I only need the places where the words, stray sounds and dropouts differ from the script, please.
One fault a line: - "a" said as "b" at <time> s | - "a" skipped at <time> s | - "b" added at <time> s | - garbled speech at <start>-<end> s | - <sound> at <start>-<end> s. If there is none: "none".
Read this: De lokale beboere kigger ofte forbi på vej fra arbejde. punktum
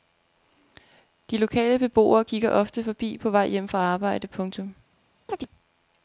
- "hjem" added at 3.5 s
- chirp at 5.3-5.5 s